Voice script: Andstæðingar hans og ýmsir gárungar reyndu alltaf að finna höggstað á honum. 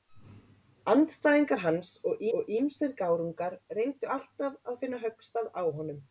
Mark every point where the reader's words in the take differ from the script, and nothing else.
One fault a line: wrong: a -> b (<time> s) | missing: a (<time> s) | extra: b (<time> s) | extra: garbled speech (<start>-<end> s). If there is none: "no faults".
extra: og (2.4 s)